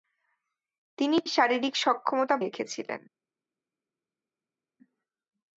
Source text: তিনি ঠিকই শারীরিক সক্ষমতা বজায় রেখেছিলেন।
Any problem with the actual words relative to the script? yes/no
yes